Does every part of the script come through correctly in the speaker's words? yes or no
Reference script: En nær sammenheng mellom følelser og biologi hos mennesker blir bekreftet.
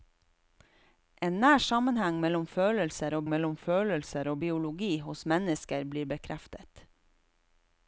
no